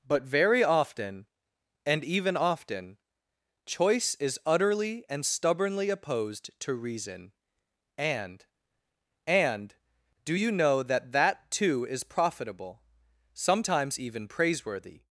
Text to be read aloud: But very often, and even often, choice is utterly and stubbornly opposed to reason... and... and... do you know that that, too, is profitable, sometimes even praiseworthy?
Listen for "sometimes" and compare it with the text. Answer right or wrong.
right